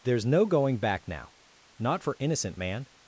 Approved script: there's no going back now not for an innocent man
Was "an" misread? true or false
true